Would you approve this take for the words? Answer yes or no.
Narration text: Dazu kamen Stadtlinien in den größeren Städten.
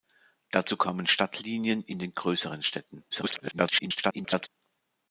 no